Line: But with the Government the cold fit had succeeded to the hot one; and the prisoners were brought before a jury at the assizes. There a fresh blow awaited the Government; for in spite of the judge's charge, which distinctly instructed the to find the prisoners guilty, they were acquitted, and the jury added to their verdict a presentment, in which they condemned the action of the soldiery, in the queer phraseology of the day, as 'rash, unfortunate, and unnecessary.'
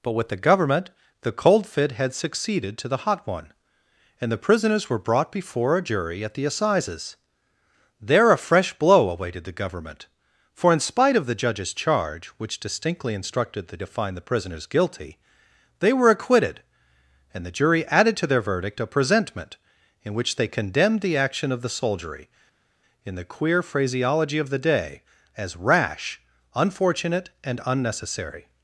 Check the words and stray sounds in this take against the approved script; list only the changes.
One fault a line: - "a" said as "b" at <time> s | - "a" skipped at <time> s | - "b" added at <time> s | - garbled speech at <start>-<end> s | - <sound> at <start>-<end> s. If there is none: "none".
none